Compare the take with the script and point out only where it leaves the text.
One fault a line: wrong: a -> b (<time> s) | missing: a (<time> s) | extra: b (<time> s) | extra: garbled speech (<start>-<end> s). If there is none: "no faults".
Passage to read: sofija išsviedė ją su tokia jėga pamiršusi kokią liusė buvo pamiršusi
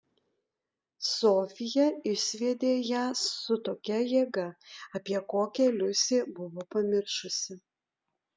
wrong: pamiršusi -> apie (5.0 s)